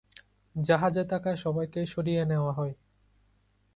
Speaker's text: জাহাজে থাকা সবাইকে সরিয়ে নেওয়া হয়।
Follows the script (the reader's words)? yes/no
yes